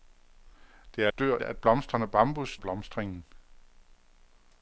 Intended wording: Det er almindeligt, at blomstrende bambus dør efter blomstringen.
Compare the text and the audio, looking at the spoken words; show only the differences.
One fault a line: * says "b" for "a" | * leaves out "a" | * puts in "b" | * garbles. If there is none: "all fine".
* says "dør" for "almindeligt"
* leaves out "dør efter"